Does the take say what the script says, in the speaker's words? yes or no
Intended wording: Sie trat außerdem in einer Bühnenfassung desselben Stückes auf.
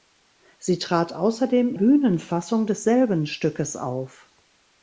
no